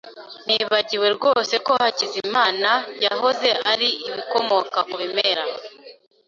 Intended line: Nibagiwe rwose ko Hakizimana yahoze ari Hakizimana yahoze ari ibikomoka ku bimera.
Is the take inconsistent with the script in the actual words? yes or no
yes